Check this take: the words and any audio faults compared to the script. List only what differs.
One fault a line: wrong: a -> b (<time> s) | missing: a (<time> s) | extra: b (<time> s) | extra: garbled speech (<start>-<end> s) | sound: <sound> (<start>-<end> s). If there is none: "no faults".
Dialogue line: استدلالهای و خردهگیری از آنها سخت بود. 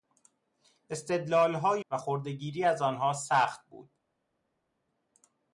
no faults